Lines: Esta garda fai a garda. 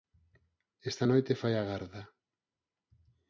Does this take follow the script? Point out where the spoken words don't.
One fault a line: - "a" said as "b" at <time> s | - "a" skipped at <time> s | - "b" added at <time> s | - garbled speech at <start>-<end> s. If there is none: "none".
- "garda" said as "noite" at 1.0 s